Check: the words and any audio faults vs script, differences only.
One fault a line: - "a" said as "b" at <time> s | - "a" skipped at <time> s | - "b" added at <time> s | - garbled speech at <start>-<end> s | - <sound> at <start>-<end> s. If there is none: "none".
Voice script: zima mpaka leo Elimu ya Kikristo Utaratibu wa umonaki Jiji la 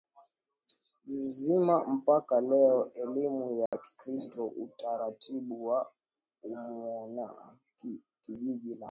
- dropout at 3.7-3.7 s